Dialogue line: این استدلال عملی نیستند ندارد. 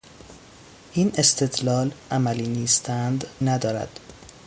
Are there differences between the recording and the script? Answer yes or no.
no